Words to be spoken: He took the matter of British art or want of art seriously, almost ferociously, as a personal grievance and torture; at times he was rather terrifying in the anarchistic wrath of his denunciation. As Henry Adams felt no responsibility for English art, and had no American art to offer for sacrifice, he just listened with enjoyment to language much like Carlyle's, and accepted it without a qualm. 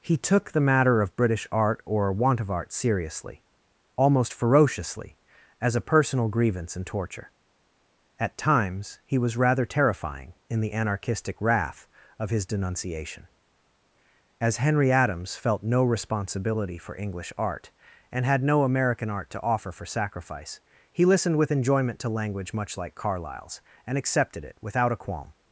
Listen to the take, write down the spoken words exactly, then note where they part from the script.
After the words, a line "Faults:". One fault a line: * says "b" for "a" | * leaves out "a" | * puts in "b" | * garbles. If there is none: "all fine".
He took the matter of British art or want of art seriously, almost ferociously, as a personal grievance and torture; at times he was rather terrifying in the anarchistic wrath of his denunciation. As Henry Adams felt no responsibility for English art, and had no American art to offer for sacrifice, he listened with enjoyment to language much like Carlyle's, and accepted it without a qualm.
Faults:
* leaves out "just"